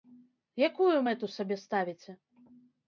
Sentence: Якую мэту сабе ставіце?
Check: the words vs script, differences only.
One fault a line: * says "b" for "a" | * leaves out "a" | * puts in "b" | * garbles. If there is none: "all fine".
all fine